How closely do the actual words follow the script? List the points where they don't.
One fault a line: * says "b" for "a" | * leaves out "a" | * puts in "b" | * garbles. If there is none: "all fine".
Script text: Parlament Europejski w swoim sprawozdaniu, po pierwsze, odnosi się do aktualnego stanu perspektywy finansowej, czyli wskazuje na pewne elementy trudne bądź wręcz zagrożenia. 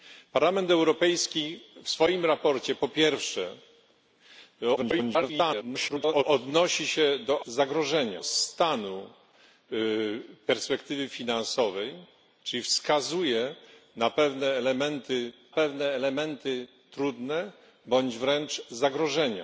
* garbles
* says "zagrożenia" for "aktualnego"
* puts in "pewne elementy"